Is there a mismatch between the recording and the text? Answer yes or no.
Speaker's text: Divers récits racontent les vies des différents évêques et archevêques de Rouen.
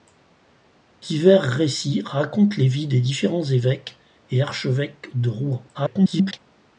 yes